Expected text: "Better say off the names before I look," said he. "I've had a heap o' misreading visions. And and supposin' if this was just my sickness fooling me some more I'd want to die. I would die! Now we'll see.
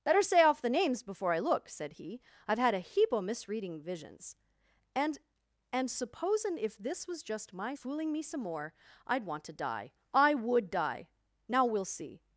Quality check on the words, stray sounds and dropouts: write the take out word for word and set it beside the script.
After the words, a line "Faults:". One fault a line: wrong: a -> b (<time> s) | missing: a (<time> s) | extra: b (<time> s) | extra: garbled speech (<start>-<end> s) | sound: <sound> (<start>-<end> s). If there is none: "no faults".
"Better say off the names before I look," said he. "I've had a heap o' misreading visions. And and supposin' if this was just my fooling me some more I'd want to die. I would die! Now we'll see.
Faults:
missing: sickness (7.8 s)